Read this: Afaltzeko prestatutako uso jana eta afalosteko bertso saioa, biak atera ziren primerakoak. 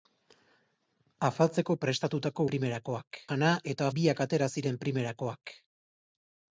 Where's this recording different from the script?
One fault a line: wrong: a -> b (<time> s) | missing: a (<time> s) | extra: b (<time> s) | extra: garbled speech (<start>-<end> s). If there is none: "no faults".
wrong: uso -> primerakoak (2.5 s)
missing: afalosteko bertso saioa (3.9 s)